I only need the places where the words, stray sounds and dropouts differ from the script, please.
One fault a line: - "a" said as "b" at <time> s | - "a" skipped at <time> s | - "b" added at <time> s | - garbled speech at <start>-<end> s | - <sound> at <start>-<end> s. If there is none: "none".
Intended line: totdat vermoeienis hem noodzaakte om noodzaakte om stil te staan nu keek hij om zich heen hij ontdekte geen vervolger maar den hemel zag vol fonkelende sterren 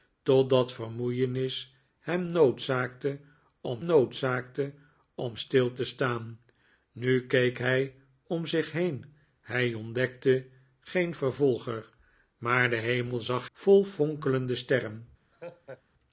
- laugh at 15.3-15.8 s